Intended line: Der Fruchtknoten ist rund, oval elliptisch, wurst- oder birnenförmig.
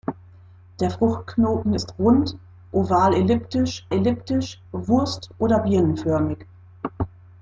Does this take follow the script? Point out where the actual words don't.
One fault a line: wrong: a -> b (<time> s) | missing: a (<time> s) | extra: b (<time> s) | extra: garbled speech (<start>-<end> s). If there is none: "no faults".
extra: elliptisch (3.9 s)